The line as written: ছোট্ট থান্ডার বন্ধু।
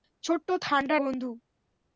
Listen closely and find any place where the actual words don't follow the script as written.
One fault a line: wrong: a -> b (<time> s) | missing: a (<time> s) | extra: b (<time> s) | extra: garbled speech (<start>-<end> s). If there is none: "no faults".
no faults